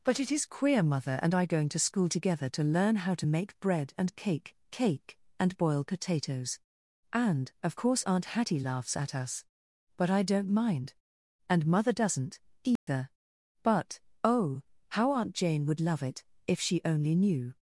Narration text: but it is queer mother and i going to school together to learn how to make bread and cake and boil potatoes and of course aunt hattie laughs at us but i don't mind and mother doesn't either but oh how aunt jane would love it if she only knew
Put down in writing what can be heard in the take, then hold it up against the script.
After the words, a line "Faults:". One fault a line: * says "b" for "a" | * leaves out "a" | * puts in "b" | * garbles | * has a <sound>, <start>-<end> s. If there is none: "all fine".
but it is queer mother and i going to school together to learn how to make bread and cake cake and boil potatoes and of course aunt hattie laughs at us but i don't mind and mother doesn't either but oh how aunt jane would love it if she only knew
Faults:
* puts in "cake"
* has a dropout, 12.8-12.9 s